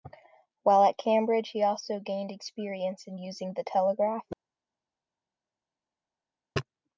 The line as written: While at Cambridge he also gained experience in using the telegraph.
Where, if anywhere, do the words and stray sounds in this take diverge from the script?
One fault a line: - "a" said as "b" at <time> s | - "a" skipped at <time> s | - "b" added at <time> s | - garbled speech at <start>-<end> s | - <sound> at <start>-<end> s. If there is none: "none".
none